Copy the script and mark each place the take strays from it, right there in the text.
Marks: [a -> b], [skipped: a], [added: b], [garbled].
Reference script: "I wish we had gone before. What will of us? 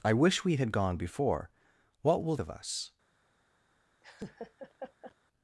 "I wish we had gone before. What will of us?